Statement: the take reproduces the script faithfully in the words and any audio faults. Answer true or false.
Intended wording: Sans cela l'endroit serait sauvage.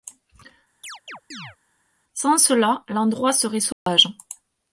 false